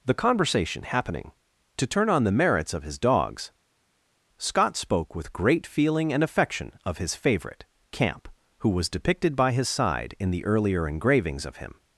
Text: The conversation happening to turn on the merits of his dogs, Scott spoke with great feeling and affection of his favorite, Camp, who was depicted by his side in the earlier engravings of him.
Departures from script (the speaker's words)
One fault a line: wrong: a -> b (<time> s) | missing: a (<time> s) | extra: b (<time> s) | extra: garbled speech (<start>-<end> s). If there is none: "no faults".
no faults